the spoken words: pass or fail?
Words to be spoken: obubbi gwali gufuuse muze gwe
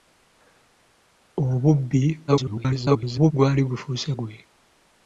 fail